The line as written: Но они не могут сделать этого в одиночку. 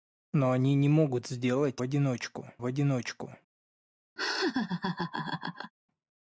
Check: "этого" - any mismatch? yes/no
yes